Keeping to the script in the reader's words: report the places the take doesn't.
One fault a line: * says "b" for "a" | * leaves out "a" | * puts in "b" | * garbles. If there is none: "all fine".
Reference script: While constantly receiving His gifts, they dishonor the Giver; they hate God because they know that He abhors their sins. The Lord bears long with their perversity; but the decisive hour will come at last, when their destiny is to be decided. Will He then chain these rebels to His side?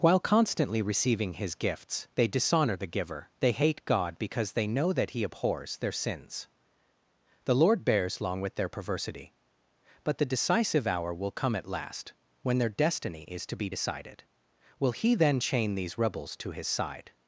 all fine